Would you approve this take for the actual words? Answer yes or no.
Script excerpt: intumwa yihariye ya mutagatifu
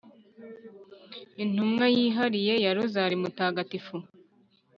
no